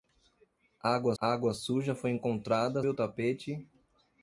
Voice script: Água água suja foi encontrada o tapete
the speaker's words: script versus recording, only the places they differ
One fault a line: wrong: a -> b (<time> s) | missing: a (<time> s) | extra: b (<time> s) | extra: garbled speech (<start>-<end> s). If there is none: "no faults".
no faults